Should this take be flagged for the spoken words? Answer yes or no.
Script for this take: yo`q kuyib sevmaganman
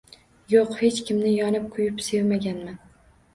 yes